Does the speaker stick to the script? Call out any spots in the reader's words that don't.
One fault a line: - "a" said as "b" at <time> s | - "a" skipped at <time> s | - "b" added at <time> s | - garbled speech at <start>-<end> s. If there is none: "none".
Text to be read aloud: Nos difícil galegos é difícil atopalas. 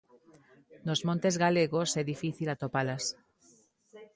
- "difícil" said as "montes" at 1.1 s